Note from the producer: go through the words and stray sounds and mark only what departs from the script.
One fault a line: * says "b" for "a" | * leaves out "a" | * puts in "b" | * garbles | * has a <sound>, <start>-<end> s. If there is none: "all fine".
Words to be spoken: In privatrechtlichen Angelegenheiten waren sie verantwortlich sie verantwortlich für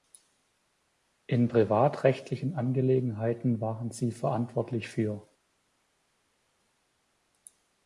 * leaves out "sie verantwortlich"